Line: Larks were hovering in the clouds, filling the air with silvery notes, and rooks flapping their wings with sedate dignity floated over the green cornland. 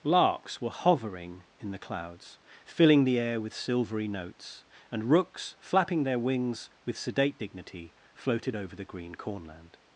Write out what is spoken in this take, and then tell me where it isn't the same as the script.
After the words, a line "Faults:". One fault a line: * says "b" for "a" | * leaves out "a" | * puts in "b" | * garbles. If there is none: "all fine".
Larks were hovering in the clouds, filling the air with silvery notes, and rooks flapping their wings with sedate dignity floated over the green cornland.
Faults:
all fine